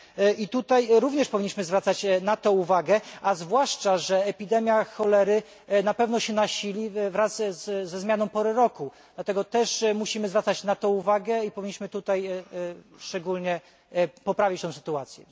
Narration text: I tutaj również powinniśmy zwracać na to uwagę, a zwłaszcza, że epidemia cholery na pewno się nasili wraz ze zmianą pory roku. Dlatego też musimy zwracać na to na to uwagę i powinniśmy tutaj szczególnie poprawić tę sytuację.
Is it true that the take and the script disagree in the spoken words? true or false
true